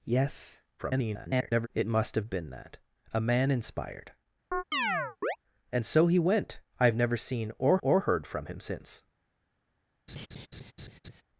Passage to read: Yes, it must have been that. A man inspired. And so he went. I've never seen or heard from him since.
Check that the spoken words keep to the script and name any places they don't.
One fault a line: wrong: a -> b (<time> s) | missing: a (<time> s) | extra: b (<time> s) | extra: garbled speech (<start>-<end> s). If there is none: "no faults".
extra: garbled speech (0.8-1.7 s)
extra: or (7.8 s)